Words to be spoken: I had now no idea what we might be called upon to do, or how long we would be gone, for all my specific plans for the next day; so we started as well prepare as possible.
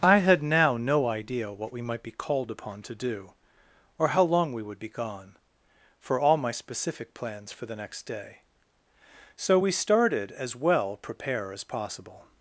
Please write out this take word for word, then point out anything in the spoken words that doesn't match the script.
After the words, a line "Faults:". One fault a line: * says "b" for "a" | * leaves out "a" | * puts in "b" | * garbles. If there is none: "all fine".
I had now no idea what we might be called upon to do, or how long we would be gone, for all my specific plans for the next day; so we started as well prepare as possible.
Faults:
all fine